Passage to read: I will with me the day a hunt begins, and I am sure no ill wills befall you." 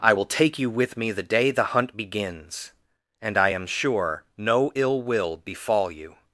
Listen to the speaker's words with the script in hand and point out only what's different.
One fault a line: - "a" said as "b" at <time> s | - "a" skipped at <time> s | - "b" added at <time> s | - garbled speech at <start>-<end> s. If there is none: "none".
- "take you" added at 0.2 s
- "a" said as "the" at 1.5 s
- "wills" said as "will" at 5.0 s